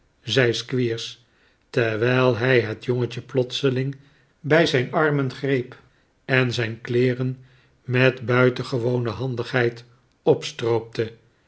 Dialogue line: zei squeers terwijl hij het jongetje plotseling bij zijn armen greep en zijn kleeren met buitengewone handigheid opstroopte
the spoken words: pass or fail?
pass